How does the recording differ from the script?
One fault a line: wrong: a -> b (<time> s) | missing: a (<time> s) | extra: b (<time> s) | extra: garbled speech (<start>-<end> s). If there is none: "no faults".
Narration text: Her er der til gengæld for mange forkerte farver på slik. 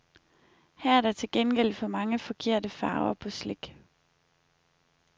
no faults